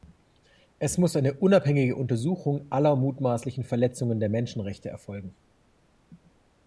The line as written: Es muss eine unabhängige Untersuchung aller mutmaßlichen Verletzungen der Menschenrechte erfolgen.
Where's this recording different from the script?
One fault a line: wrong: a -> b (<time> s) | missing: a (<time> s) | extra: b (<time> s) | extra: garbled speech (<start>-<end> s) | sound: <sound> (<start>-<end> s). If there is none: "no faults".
no faults